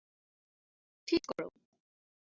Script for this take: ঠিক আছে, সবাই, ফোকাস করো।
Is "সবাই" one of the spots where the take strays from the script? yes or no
yes